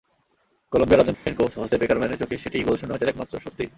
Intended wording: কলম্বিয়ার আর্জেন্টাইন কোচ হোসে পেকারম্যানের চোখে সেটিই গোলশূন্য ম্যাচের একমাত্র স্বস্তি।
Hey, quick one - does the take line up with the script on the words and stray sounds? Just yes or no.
no